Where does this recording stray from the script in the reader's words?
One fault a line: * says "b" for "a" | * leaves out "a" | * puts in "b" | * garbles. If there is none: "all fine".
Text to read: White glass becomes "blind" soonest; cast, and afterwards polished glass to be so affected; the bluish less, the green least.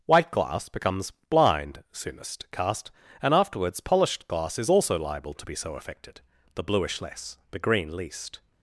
* puts in "is also liable"